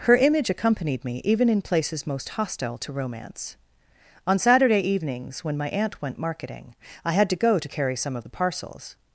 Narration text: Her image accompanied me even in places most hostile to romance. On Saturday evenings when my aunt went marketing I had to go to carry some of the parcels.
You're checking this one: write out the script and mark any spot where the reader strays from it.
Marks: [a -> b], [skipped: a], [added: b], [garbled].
Her image accompanied me even in places most hostile to romance. On Saturday evenings when my aunt went marketing I had to go to carry some of the parcels.